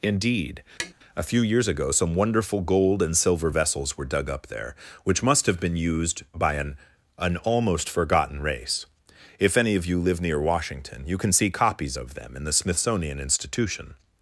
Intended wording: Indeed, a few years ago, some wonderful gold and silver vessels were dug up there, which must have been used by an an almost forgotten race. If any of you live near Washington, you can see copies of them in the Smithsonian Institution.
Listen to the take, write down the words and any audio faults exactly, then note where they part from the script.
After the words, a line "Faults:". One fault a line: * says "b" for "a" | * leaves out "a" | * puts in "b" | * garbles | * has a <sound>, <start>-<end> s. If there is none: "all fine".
Indeed, a few years ago, some wonderful gold and silver vessels were dug up there, which must have been used by an an almost forgotten race. If any of you live near Washington, you can see copies of them in the Smithsonian Institution.
Faults:
* has a tap, 0.8-0.9 s